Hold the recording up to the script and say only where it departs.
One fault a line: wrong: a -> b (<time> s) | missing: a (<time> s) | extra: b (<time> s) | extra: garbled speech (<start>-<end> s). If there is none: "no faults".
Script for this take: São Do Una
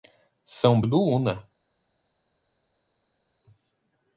no faults